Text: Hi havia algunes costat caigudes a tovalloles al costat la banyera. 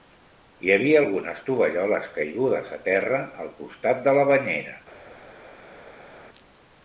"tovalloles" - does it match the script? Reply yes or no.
no